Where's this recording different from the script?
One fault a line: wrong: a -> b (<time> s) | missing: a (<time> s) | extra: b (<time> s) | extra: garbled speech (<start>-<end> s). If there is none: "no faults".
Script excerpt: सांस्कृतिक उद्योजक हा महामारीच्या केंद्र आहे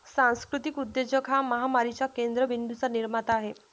extra: बिंदूंचा निर्माता (2.4 s)